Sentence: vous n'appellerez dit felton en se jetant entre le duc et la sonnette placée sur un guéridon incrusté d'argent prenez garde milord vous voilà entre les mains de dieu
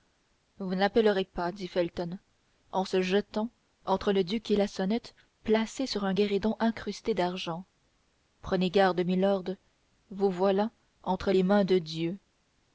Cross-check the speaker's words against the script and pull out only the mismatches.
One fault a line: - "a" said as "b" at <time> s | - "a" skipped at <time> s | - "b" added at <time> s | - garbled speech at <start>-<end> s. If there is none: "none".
- "pas" added at 1.2 s